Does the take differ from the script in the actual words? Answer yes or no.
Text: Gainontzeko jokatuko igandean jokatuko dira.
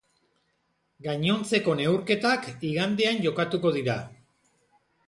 yes